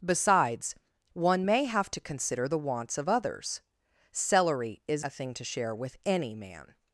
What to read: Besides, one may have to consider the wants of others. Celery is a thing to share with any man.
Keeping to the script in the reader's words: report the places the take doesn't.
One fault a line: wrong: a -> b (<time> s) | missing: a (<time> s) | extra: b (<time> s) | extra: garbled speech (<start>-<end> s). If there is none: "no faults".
no faults